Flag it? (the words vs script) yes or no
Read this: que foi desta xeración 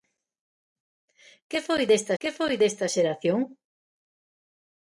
yes